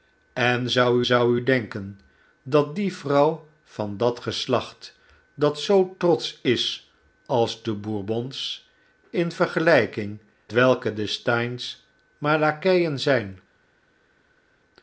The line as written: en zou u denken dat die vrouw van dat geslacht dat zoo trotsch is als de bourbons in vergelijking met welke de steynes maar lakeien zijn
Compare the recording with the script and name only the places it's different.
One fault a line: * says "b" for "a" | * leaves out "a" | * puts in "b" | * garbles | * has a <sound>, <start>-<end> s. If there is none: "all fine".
* puts in "zou"
* leaves out "met"